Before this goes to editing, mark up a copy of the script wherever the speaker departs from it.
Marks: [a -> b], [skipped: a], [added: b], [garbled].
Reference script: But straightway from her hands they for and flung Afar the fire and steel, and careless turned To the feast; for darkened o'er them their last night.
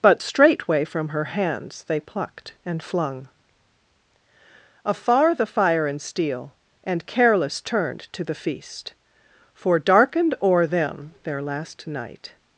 But straightway from her hands they [for -> plucked] and flung Afar the fire and steel, and careless turned To the feast; for darkened o'er them their last night.